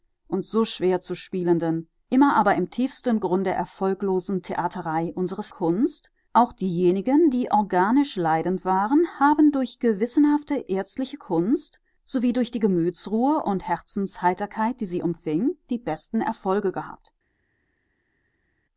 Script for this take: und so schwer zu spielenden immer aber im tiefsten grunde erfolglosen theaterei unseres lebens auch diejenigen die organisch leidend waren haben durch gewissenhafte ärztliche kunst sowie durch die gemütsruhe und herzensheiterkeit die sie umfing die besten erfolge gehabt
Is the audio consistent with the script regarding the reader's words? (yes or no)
no